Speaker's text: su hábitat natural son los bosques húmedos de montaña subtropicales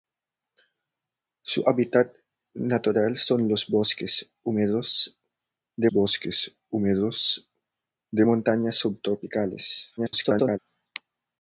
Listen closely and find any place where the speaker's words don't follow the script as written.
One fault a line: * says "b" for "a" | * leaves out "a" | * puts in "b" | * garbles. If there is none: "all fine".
* puts in "bosques húmedos de"
* garbles